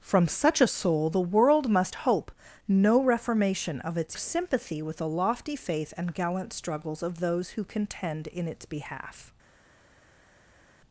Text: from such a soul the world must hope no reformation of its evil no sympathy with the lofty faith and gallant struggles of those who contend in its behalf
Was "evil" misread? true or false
true